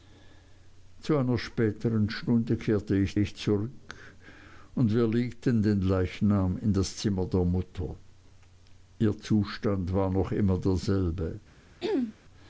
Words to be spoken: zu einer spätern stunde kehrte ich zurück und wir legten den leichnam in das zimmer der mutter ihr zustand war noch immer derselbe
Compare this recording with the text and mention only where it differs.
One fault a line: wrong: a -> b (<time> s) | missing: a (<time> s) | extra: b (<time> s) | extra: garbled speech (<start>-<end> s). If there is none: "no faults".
extra: ich (3.2 s)